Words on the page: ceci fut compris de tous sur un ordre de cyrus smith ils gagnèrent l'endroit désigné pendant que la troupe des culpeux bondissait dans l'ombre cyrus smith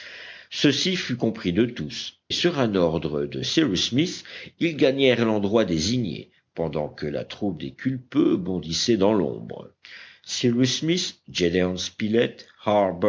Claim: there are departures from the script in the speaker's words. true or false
false